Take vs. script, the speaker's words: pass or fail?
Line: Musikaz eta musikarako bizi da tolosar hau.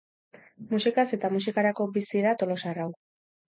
pass